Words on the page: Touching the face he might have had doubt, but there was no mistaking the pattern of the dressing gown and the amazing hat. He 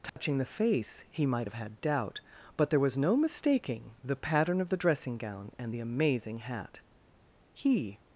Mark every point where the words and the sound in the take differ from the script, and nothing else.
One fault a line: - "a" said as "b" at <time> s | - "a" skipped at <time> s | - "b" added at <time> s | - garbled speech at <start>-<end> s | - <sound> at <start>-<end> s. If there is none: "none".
- dropout at 0.1-0.2 s